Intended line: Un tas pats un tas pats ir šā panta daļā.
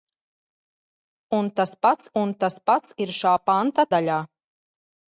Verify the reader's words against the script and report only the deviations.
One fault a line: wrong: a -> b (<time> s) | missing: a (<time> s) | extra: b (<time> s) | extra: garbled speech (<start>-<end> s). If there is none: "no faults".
no faults